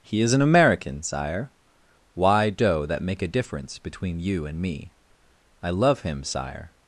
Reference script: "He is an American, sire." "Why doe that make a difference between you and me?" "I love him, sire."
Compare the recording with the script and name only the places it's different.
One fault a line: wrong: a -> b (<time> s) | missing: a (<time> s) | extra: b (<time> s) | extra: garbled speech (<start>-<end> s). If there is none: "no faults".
no faults